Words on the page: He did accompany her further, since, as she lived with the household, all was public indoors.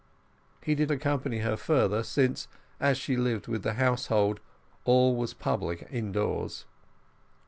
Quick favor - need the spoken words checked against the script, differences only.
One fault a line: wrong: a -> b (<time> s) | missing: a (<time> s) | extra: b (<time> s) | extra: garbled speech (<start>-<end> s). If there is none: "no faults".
no faults